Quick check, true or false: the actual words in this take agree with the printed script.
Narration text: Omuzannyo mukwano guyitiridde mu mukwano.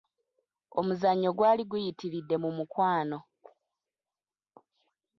false